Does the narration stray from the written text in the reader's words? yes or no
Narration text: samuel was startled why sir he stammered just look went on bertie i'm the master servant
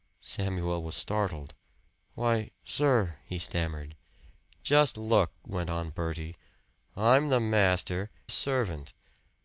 no